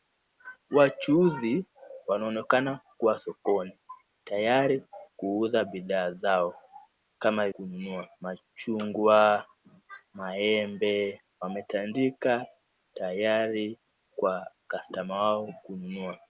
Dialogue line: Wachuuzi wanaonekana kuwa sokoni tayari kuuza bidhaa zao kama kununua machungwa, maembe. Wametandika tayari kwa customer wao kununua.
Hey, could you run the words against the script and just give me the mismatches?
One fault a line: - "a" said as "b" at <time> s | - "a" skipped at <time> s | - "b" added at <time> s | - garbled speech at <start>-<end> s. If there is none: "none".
none